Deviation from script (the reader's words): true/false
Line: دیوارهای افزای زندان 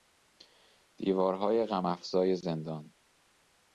true